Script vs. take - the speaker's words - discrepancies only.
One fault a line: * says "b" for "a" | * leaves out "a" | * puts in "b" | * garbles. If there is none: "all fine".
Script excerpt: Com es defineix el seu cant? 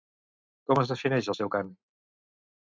all fine